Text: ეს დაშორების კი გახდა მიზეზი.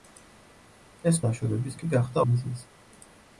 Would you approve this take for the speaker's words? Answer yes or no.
yes